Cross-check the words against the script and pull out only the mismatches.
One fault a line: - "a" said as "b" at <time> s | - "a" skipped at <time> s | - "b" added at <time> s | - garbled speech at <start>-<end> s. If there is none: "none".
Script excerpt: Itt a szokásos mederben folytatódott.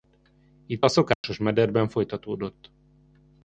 none